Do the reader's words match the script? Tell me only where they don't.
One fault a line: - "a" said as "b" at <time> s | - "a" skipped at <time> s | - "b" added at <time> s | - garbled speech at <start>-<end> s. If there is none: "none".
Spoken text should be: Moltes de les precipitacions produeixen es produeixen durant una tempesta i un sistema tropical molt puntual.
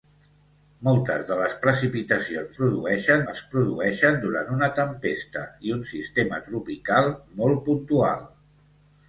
none